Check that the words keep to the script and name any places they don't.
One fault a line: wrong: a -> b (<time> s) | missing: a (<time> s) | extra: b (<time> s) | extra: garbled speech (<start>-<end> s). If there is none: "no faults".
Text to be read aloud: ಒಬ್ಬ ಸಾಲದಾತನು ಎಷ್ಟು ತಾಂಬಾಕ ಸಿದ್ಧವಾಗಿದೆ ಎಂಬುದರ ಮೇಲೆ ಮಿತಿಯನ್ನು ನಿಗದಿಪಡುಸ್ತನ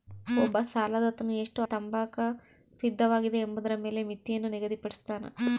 no faults